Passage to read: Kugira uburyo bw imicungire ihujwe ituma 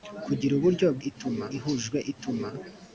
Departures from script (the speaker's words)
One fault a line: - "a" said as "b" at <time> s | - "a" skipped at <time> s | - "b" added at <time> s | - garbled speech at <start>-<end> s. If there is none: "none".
- "imicungire" said as "ituma" at 1.1 s